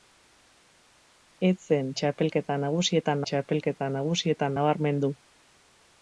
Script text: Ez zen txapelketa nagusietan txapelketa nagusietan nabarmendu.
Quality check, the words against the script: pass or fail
pass